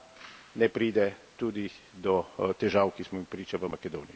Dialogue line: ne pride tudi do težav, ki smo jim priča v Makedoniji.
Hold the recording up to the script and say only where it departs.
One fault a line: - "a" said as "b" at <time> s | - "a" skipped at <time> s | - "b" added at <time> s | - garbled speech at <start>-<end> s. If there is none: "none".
none